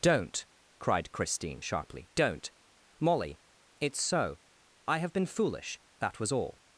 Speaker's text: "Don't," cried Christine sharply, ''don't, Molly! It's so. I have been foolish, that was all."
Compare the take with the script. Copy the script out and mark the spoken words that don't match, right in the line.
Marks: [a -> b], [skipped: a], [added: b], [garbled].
"Don't," cried Christine sharply, ''don't, Molly! It's so. I have been foolish, that was all."